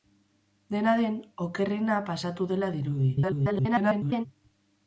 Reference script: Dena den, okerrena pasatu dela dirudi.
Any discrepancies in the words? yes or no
yes